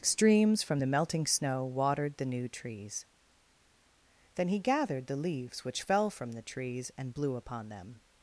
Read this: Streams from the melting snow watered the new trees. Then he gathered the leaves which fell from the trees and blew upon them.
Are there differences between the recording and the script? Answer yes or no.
no